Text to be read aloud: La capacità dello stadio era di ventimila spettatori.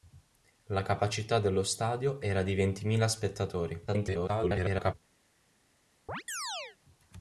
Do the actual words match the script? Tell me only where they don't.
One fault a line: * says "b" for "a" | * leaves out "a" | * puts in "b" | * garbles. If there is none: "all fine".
* garbles